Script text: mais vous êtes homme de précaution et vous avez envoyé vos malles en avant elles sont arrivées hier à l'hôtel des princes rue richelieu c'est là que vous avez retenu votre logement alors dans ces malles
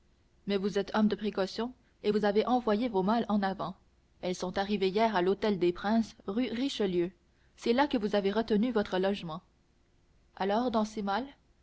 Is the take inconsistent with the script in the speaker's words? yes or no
no